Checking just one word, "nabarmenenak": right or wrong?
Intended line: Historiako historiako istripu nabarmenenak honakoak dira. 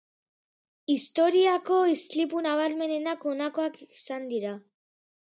right